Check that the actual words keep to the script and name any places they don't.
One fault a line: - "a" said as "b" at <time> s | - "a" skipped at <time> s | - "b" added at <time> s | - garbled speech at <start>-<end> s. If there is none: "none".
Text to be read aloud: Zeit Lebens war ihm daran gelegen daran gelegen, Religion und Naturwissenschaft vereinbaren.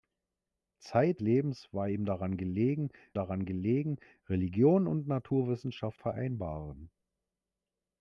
none